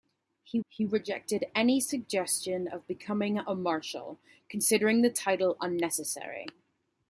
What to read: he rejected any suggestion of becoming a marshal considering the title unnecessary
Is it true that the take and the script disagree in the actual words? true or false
true